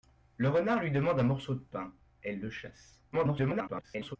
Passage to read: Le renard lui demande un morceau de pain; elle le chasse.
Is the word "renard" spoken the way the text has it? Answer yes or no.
yes